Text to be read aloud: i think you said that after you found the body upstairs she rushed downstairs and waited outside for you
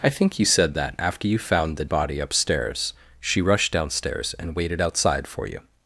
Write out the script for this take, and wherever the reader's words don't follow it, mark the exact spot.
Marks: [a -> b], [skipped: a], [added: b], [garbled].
i think you said that after you found the body upstairs she rushed downstairs and waited outside for you